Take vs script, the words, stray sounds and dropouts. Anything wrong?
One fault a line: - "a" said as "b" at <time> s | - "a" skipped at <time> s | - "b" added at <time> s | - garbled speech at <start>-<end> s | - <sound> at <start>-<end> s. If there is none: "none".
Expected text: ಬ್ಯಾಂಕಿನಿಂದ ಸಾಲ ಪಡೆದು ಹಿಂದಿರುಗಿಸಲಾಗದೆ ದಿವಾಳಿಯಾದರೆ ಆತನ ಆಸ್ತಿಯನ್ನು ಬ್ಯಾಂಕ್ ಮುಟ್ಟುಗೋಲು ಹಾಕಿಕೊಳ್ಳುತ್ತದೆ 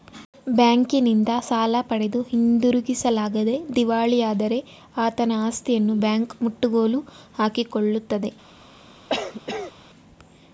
- cough at 9.1-9.7 s